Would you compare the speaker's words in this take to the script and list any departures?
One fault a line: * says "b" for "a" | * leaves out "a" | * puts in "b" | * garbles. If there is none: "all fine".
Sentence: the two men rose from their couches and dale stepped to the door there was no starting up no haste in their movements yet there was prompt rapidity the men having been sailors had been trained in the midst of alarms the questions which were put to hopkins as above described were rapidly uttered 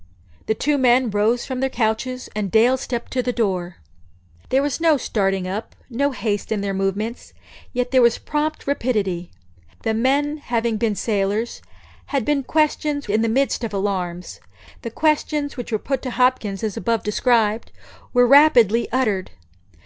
* says "questions" for "trained"